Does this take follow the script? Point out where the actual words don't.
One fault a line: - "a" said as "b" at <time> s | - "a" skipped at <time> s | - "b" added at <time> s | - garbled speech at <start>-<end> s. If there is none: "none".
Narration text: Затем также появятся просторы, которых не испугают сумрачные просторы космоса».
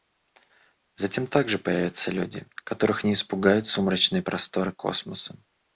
- "просторы" said as "люди" at 2.1 s